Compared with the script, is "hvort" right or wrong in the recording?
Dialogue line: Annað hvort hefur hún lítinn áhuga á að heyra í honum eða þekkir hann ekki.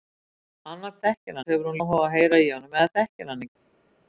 wrong